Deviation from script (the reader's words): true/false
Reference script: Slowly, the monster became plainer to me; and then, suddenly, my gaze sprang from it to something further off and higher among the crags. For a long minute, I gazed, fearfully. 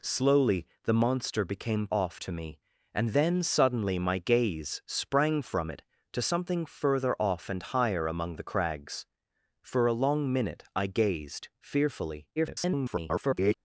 true